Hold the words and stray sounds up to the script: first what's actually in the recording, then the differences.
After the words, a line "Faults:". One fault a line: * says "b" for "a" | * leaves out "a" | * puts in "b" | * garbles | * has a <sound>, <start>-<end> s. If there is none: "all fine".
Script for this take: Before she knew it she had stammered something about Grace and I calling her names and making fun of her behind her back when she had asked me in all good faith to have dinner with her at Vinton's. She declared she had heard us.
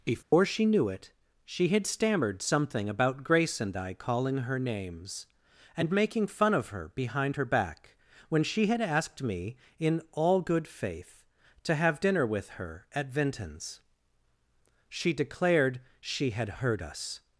Before she knew it she had stammered something about Grace and I calling her names and making fun of her behind her back when she had asked me in all good faith to have dinner with her at Vinton's. She declared she had heard us.
Faults:
* has a dropout, 0.2-0.3 s